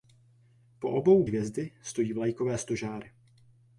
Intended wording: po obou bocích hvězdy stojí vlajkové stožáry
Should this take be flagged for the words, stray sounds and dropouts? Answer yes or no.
yes